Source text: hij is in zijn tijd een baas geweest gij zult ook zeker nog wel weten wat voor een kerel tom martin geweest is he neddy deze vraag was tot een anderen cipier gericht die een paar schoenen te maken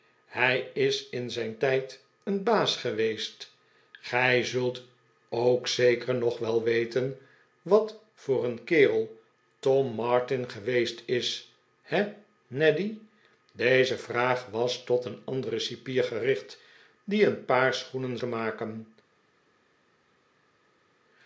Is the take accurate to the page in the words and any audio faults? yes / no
yes